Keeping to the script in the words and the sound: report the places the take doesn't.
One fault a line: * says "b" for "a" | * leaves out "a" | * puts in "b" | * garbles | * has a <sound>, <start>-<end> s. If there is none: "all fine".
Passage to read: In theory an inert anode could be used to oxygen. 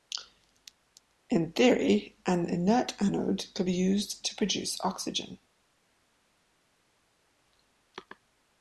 * puts in "produce"